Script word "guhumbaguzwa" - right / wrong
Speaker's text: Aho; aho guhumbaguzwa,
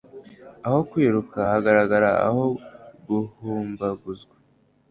right